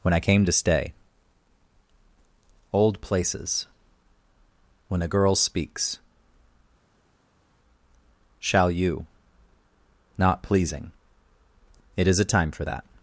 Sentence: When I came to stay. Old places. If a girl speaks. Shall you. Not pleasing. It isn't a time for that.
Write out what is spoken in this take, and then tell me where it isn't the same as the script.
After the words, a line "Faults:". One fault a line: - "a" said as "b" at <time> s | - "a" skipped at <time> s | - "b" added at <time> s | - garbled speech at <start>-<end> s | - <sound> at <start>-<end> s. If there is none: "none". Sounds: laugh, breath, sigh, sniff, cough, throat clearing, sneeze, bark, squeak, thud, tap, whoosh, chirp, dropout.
When I came to stay. Old places. When a girl speaks. Shall you. Not pleasing. It is a time for that.
Faults:
- "If" said as "When" at 4.9 s
- "isn't" said as "is" at 12.1 s